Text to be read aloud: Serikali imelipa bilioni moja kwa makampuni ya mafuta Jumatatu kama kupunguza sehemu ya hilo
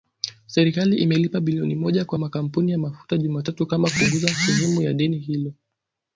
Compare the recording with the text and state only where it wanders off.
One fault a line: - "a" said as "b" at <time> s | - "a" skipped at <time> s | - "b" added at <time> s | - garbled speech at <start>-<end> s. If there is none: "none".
- "deni" added at 4.9 s